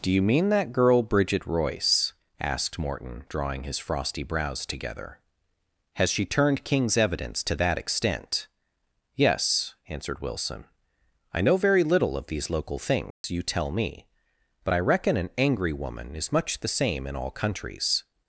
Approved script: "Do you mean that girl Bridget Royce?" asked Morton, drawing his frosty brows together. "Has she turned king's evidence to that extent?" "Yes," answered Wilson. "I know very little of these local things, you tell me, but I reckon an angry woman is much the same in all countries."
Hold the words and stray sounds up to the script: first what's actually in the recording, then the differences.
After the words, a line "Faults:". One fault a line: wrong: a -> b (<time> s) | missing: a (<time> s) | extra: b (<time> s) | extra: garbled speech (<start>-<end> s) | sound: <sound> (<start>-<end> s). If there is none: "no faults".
"Do you mean that girl Bridget Royce?" asked Morton, drawing his frosty brows together. "Has she turned king's evidence to that extent?" "Yes," answered Wilson. "I know very little of these local things, you tell me, but I reckon an angry woman is much the same in all countries."
Faults:
sound: dropout (13.1-13.2 s)